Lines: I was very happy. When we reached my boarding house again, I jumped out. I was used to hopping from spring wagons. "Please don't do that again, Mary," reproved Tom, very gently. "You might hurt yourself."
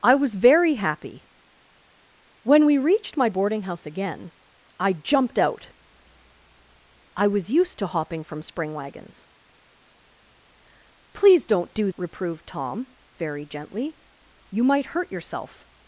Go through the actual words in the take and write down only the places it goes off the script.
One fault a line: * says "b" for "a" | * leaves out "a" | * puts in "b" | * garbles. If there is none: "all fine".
* leaves out "that again Mary"